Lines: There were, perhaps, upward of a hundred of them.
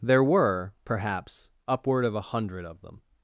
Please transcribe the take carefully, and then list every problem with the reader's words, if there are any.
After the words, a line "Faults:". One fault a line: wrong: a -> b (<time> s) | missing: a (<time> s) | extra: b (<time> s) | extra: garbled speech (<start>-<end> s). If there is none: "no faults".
There were, perhaps, upward of a hundred of them.
Faults:
no faults